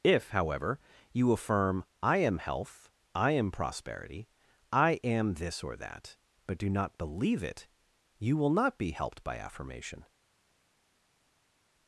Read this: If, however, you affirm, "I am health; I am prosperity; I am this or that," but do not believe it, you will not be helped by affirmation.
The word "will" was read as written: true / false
true